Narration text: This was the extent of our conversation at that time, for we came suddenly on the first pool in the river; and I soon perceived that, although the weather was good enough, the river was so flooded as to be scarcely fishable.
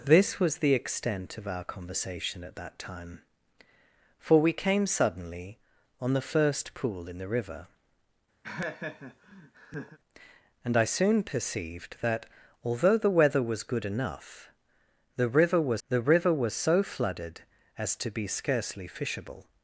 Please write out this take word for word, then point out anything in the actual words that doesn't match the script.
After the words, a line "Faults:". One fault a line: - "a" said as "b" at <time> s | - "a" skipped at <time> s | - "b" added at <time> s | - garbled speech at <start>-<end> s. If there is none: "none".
This was the extent of our conversation at that time, for we came suddenly on the first pool in the river; and I soon perceived that, although the weather was good enough, the river was the river was so flooded as to be scarcely fishable.
Faults:
- "the river was" added at 15.9 s